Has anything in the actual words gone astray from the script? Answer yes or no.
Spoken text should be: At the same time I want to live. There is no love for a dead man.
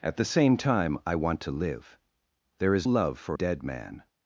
yes